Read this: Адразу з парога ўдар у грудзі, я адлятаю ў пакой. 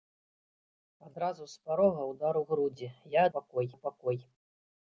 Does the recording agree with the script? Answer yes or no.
no